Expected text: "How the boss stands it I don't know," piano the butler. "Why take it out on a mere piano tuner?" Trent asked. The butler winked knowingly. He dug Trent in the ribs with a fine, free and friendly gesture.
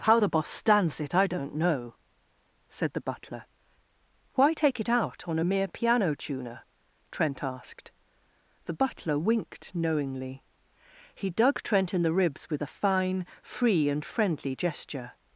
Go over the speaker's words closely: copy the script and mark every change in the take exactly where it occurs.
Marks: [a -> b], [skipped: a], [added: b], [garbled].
"How the boss stands it I don't know," [piano -> said] the butler. "Why take it out on a mere piano tuner?" Trent asked. The butler winked knowingly. He dug Trent in the ribs with a fine, free and friendly gesture.